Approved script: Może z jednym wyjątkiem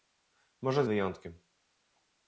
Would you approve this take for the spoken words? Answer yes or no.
no